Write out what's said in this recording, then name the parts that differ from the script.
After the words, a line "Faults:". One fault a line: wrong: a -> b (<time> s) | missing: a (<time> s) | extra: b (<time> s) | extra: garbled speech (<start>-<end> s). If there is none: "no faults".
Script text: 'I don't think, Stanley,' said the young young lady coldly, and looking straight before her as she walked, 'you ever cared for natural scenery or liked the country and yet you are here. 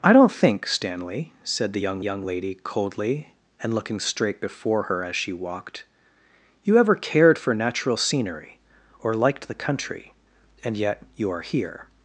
'I don't think, Stanley,' said the young young lady coldly, and looking straight before her as she walked, 'you ever cared for natural scenery or liked the country and yet you are here.
Faults:
no faults